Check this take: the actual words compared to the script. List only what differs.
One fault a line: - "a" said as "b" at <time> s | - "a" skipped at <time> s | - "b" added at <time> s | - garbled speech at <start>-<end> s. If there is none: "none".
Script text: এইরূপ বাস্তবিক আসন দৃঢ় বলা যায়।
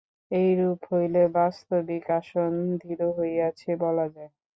- "হইলে" added at 0.9 s
- "হইয়াছে" added at 3.2 s